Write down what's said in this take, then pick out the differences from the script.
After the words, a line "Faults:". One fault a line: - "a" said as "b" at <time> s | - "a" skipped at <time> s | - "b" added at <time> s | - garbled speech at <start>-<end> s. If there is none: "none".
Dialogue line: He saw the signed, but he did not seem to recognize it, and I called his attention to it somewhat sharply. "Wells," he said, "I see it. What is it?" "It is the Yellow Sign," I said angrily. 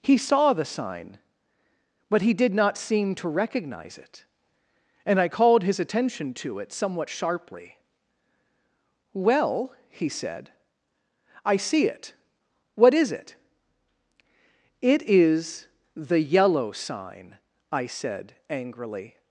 He saw the sign, but he did not seem to recognize it, and I called his attention to it somewhat sharply. "Well," he said, "I see it. What is it?" "It is the Yellow Sign," I said angrily.
Faults:
- "signed" said as "sign" at 0.7 s
- "Wells" said as "Well" at 9.1 s